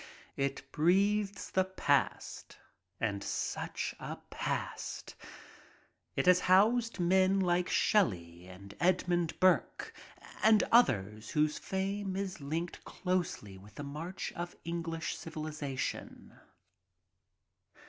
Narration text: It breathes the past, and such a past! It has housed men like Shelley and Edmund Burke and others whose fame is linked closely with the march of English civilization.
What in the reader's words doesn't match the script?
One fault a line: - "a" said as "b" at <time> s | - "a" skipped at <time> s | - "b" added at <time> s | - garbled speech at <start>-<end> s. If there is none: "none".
none